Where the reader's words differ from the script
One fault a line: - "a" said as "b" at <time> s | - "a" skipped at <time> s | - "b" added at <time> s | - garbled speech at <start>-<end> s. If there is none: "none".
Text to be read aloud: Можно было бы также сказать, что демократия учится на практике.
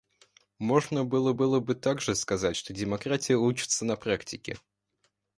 - "было" added at 1.3 s